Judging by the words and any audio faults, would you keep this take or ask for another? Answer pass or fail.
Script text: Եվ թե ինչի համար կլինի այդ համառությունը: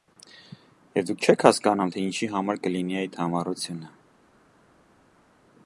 fail